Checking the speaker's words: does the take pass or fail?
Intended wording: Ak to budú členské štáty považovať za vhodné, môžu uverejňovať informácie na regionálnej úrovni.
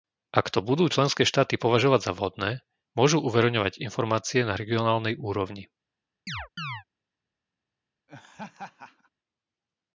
pass